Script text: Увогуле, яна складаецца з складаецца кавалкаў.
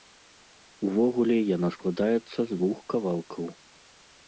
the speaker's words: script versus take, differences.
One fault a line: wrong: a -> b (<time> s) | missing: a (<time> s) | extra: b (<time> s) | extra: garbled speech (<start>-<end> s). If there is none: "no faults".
wrong: складаецца -> двух (2.6 s)